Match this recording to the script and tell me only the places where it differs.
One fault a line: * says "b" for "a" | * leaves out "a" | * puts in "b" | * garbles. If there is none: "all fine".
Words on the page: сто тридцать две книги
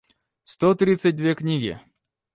all fine